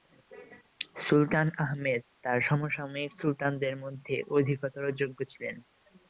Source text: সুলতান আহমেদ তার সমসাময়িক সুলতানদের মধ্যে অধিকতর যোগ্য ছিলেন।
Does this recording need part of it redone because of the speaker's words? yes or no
no